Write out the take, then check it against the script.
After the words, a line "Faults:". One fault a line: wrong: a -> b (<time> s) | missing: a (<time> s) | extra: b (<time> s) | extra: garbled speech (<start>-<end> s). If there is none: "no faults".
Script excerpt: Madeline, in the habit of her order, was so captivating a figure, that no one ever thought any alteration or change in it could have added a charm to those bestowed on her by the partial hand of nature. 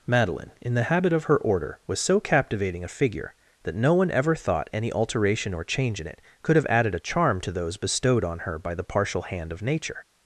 Madeline, in the habit of her order, was so captivating a figure, that no one ever thought any alteration or change in it could have added a charm to those bestowed on her by the partial hand of nature.
Faults:
no faults